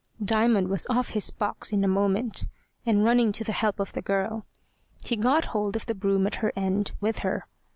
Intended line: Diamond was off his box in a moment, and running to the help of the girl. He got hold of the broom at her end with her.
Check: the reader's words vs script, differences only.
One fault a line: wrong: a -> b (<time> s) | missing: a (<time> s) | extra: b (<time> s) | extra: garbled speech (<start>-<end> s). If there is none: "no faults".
no faults